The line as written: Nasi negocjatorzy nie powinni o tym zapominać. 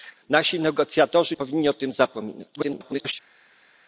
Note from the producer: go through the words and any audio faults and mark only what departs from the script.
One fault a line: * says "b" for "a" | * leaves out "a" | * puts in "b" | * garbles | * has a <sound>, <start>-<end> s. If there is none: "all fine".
* leaves out "nie"
* garbles